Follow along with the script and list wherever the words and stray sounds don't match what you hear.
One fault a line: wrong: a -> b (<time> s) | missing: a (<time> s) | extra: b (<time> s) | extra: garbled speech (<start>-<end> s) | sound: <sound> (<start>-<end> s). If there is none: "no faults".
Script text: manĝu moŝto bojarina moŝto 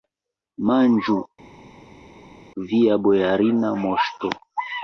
wrong: moŝto -> via (2.7 s)